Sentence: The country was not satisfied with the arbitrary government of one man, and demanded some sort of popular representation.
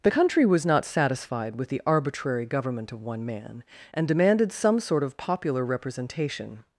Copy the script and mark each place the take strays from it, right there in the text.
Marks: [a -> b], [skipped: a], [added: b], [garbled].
The country was not satisfied with the arbitrary government of one man, and demanded some sort of popular representation.